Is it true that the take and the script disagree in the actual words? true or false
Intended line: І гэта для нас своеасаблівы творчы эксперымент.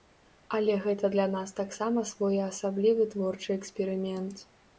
true